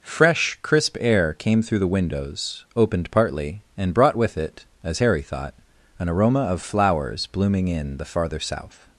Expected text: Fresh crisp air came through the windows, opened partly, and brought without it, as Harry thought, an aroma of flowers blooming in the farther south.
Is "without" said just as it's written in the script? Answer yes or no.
no